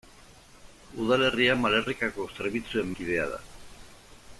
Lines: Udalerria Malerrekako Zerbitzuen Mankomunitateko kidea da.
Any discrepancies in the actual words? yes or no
yes